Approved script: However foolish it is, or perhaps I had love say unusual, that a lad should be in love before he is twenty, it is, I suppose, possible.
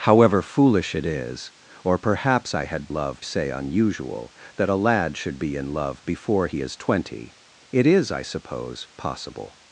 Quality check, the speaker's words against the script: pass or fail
pass